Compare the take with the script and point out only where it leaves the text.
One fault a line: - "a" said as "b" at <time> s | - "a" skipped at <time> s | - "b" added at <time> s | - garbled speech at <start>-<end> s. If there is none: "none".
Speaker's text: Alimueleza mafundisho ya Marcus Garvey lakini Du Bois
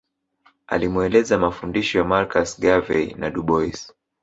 - "lakini" said as "na" at 3.2 s